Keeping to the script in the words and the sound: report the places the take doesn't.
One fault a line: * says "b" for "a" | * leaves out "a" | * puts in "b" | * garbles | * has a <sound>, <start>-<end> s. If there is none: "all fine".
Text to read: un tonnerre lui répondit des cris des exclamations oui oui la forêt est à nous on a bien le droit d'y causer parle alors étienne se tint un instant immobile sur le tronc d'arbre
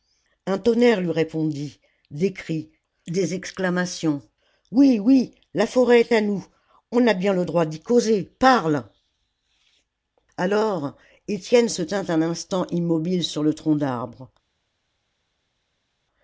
all fine